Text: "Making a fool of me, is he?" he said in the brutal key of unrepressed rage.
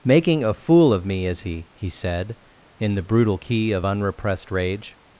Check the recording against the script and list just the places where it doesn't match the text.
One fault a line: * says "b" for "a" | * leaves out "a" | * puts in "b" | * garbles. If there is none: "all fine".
all fine